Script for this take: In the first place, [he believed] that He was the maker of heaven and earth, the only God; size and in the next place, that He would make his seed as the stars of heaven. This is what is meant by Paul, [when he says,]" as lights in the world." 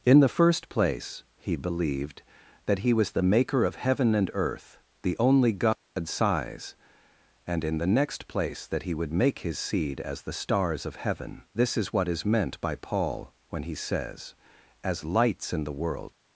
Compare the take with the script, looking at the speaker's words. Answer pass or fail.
pass